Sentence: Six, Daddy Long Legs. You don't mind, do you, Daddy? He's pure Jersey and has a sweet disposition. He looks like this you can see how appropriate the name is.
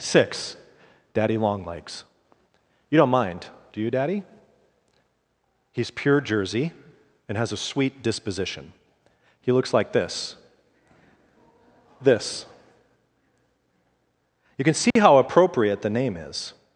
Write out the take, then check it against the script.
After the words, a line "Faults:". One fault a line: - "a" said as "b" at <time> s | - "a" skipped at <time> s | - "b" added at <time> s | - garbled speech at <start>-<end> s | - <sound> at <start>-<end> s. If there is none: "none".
Six, Daddy Long Legs. You don't mind, do you, Daddy? He's pure Jersey and has a sweet disposition. He looks like this this you can see how appropriate the name is.
Faults:
- "this" added at 12.0 s
- dropout at 14.9-15.0 s